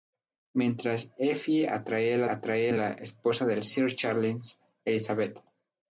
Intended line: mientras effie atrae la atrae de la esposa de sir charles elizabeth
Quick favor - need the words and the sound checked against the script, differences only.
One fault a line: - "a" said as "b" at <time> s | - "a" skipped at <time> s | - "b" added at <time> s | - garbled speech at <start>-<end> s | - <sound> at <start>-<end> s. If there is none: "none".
none